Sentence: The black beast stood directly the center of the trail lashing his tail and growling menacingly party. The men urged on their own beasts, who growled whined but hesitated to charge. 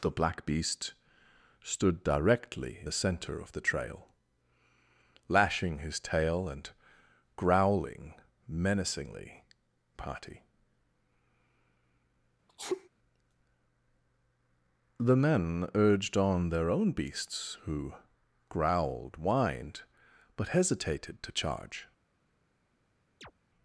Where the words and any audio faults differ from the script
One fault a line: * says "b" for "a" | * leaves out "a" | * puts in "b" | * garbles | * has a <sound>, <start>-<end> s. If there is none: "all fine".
* has a sneeze, 12.5-12.9 s
* has a chirp, 23.2-23.3 s